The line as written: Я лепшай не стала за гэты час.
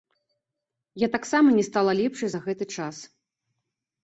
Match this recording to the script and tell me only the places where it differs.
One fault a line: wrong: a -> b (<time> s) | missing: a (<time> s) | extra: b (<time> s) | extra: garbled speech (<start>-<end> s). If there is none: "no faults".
wrong: лепшай -> таксама (1.1 s)
extra: лепшай (2.0 s)